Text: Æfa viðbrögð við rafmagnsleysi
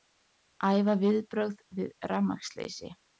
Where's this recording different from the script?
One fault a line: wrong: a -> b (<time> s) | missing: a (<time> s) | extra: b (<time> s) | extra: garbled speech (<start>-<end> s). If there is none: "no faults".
no faults